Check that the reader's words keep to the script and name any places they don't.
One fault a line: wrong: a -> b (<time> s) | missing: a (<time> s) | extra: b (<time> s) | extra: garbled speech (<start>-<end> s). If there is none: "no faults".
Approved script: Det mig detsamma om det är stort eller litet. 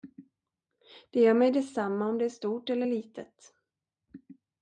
extra: gör (1.2 s)